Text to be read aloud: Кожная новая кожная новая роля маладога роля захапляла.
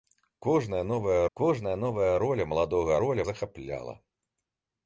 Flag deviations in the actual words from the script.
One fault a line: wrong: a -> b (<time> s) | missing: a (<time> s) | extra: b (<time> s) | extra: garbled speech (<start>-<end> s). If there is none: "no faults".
no faults